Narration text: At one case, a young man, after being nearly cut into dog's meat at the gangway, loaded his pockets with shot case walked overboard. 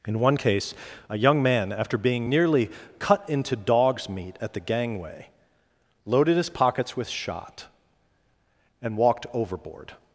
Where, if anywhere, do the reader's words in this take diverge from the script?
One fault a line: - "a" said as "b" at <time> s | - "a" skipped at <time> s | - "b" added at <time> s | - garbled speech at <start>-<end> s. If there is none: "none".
- "At" said as "In" at 0.1 s
- "case" said as "and" at 8.8 s